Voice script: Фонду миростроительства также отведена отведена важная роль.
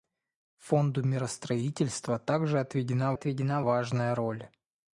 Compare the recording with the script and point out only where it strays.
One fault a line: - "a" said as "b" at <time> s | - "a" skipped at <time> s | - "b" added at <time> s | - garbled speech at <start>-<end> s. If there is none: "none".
none